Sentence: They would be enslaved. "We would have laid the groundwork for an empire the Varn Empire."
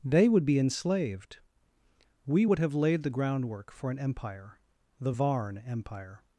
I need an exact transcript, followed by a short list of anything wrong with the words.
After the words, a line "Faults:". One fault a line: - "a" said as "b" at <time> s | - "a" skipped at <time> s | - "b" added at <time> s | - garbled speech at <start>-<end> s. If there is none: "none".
They would be enslaved. "We would have laid the groundwork for an empire the Varn Empire."
Faults:
none